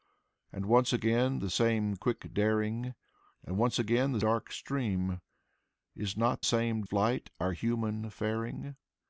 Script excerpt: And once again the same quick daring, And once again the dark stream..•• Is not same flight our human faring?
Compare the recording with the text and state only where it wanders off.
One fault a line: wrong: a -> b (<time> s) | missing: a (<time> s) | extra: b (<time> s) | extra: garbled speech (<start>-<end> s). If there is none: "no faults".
no faults